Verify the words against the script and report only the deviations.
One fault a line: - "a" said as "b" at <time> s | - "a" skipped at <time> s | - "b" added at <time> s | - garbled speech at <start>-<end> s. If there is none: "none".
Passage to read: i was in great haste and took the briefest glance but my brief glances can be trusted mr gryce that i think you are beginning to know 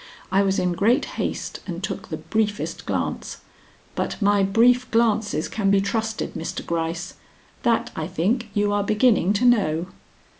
none